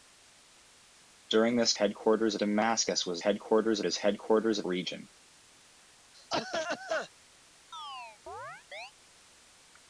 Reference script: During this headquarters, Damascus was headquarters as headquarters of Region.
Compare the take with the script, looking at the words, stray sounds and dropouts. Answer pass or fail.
fail